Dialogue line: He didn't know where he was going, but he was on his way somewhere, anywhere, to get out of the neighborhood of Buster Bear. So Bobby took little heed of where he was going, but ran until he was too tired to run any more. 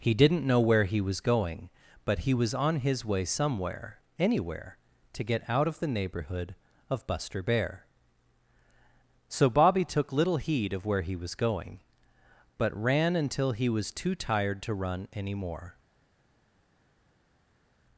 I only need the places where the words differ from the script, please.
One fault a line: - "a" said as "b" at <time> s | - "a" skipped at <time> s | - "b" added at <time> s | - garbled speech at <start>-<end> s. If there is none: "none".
none